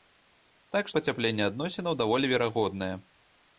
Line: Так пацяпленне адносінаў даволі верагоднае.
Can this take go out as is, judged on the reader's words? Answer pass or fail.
pass